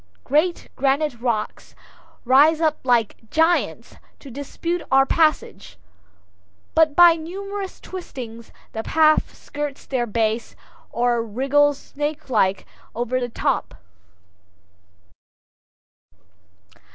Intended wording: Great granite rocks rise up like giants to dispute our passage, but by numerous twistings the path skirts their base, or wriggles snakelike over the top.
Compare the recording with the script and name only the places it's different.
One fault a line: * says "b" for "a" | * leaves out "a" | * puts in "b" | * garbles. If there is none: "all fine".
all fine